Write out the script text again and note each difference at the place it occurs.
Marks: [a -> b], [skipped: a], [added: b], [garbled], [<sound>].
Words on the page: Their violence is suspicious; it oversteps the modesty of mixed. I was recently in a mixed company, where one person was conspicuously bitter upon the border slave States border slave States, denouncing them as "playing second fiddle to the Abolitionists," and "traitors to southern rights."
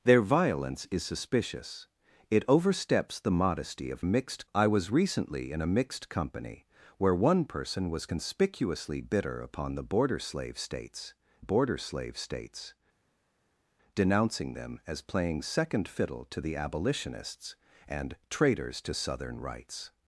Their violence is suspicious; it oversteps the modesty of mixed. I was recently in a mixed company, where one person was conspicuously bitter upon the border slave States border slave States, denouncing them as "playing second fiddle to the Abolitionists," and "traitors to southern rights."